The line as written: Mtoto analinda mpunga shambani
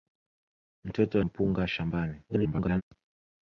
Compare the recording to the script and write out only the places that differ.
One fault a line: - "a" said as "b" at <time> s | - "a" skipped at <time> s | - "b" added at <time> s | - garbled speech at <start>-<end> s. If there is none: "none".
- "analinda" skipped at 1.2 s
- garbled speech at 2.3-2.8 s